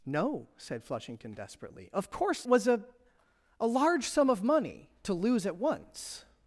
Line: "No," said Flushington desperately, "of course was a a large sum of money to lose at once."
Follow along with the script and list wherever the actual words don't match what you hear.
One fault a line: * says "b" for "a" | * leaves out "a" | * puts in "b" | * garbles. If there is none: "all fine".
all fine